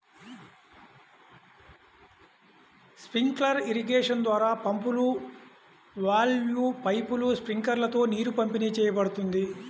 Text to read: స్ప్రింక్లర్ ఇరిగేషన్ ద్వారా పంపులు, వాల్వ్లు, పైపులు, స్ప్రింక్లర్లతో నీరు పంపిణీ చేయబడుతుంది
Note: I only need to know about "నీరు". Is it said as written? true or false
true